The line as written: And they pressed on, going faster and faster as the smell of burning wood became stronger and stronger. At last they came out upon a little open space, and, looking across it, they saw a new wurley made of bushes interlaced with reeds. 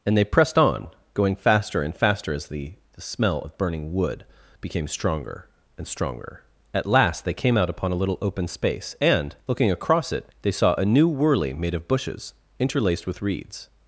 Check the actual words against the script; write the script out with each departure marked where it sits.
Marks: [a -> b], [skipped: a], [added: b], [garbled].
And they pressed on, going faster and faster as the [added: the] smell of burning wood became stronger and stronger. At last they came out upon a little open space, and, looking across it, they saw a new wurley made of bushes interlaced with reeds.